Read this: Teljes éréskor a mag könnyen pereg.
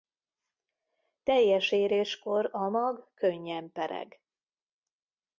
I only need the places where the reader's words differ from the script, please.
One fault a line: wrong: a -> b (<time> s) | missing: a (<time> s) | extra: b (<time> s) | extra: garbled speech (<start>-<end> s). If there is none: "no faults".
no faults